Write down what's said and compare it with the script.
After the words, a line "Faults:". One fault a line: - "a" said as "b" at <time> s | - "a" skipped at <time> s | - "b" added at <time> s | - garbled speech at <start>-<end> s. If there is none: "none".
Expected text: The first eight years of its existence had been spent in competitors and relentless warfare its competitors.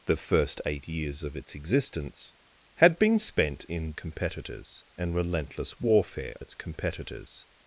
The first eight years of its existence had been spent in competitors and relentless warfare its competitors.
Faults:
none